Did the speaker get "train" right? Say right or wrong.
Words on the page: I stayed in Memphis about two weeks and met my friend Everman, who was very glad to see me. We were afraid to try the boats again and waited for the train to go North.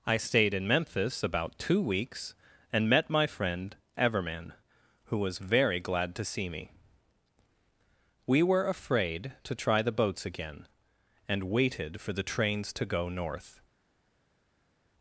wrong